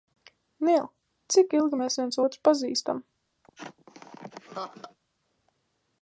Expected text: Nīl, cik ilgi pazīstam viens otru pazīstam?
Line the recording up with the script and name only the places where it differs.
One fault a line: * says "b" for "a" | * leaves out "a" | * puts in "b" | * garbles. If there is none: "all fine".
* says "mēs" for "pazīstam"